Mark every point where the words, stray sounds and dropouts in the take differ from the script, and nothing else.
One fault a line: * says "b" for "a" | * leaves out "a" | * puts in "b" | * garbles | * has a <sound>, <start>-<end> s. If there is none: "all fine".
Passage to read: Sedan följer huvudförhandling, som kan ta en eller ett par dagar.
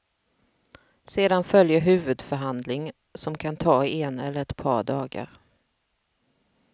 all fine